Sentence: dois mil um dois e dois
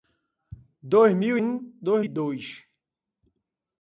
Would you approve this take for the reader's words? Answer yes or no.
yes